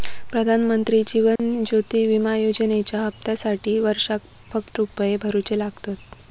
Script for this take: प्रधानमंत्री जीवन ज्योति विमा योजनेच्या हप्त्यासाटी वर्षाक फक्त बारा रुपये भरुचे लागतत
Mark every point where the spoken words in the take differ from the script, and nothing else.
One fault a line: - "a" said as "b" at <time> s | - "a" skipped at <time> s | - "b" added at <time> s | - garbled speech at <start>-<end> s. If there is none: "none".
- "बारा" skipped at 4.8 s